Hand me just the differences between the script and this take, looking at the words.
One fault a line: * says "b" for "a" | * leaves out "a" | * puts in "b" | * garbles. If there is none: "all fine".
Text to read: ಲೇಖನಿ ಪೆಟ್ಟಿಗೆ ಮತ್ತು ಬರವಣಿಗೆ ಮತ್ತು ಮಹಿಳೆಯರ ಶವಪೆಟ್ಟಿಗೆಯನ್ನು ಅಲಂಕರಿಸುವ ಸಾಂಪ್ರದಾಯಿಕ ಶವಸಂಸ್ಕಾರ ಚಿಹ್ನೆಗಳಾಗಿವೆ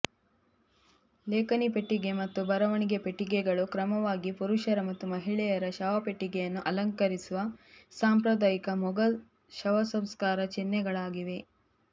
* puts in "ಪೆಟ್ಟಿಗೆಗಳು ಕ್ರಮವಾಗಿ ಪುರುಷರ"
* puts in "ಮೊಘಲ್"